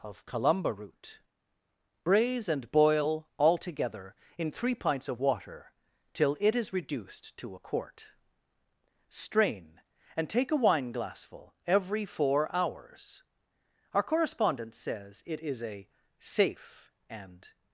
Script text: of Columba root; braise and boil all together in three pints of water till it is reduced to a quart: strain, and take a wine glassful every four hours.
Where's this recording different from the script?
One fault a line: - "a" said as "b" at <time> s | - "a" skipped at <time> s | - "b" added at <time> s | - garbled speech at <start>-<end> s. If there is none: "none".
- "Our correspondent says it is a safe and" added at 13.9 s